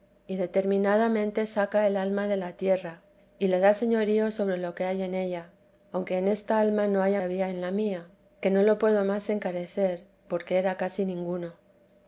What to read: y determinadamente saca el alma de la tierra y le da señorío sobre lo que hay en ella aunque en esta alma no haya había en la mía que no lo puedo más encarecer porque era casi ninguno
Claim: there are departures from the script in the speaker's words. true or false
false